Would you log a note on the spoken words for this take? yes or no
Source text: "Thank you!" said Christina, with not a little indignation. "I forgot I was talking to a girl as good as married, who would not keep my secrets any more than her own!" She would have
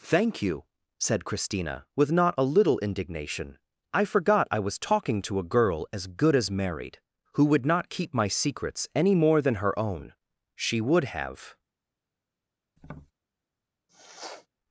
no